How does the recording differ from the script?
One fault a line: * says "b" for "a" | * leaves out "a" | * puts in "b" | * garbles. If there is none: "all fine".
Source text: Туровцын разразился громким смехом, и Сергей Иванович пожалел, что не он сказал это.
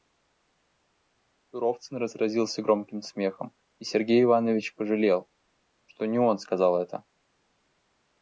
all fine